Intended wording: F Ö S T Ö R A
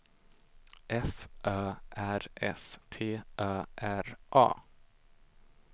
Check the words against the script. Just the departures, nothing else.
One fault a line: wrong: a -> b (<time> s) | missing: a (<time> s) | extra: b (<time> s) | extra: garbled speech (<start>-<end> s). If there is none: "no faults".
extra: R (1.9 s)